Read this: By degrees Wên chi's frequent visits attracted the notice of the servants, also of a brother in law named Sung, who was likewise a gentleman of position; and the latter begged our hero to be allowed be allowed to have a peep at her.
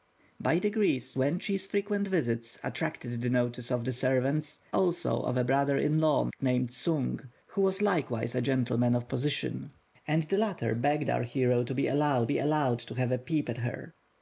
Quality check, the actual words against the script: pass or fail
pass